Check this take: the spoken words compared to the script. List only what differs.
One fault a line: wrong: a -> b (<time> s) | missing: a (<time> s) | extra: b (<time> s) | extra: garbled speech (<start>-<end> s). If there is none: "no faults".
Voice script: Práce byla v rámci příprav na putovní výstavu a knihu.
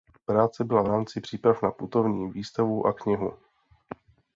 no faults